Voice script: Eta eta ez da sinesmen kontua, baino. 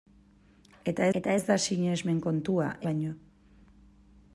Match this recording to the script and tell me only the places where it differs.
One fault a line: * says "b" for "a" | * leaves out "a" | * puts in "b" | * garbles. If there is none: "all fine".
all fine